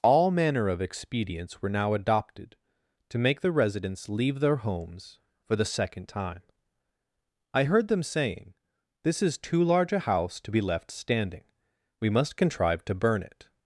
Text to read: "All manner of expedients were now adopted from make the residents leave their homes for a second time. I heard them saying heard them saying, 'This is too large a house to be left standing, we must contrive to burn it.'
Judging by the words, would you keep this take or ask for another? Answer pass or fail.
fail